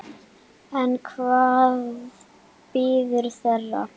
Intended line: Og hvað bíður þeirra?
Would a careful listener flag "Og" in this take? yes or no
yes